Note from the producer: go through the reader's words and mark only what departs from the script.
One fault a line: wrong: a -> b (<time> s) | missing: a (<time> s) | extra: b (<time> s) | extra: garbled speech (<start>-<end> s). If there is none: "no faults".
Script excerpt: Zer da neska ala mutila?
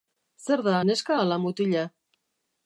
no faults